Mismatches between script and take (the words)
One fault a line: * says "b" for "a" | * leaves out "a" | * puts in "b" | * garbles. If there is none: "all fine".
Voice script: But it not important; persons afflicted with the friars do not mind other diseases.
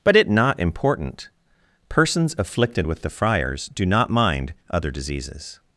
all fine